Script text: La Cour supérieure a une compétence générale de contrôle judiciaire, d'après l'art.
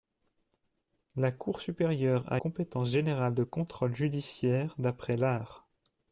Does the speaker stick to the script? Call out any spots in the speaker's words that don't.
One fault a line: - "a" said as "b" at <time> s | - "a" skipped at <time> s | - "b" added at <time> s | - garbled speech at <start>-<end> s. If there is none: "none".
- "une" skipped at 2.4 s